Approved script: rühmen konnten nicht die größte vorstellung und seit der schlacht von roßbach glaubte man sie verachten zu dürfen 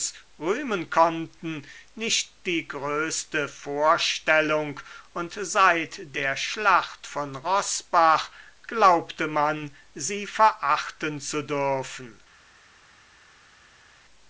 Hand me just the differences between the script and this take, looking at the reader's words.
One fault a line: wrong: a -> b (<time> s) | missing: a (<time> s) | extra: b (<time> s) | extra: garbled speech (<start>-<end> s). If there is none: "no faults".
no faults